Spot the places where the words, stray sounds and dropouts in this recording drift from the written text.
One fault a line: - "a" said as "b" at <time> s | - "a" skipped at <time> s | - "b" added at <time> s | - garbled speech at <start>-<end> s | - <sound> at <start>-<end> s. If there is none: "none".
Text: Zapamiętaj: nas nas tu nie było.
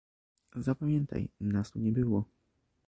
- "nas" skipped at 1.7 s